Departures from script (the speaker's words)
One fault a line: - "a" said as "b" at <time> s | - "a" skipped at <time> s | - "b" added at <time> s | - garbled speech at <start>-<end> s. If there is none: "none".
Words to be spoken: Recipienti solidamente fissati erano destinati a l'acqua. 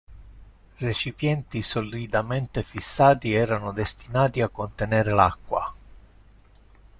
- "contenere" added at 4.5 s